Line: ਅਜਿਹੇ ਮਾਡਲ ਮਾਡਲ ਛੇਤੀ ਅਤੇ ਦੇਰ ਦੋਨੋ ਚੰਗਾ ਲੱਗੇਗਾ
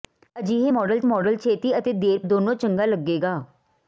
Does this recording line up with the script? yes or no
yes